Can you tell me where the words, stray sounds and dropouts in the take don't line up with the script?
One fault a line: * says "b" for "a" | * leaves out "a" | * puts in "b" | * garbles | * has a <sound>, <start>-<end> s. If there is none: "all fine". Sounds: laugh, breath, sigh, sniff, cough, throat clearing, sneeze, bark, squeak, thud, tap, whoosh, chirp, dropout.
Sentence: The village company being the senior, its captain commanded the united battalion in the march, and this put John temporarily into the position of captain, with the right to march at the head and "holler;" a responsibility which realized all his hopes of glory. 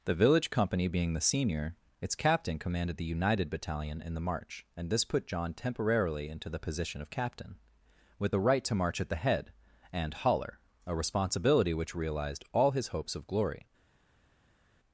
all fine